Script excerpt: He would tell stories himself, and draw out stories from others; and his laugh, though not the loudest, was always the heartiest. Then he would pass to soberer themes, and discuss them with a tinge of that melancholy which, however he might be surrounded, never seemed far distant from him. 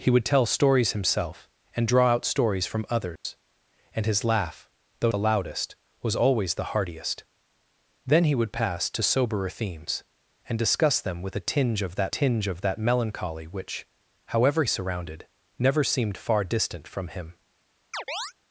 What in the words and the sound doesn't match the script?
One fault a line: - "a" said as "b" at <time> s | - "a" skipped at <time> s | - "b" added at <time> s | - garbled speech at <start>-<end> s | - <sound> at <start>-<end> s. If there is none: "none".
- dropout at 3.2-3.2 s
- "not" skipped at 5.1 s
- "tinge of that" added at 12.1 s
- "he might be" skipped at 14.6 s
- chirp at 17.9-18.3 s